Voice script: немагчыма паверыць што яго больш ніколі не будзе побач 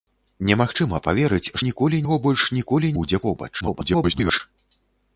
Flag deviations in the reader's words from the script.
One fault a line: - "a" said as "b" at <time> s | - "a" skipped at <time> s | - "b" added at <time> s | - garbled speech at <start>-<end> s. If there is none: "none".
- "што" said as "ніколі" at 1.7 s
- "не" skipped at 3.0 s
- garbled speech at 3.6-4.4 s